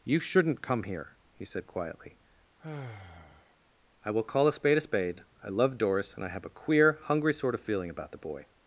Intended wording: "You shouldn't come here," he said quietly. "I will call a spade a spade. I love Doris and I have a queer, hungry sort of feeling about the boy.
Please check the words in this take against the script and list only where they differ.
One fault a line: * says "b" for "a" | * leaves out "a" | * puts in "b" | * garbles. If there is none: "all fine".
all fine